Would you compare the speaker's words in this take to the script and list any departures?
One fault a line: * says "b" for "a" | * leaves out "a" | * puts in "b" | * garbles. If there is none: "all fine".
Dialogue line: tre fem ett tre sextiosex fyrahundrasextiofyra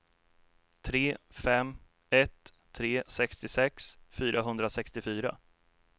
all fine